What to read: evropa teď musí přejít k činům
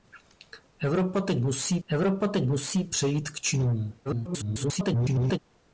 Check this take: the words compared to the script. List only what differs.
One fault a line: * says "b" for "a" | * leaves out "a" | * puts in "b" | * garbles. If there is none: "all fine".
* puts in "evropa teď musí"
* garbles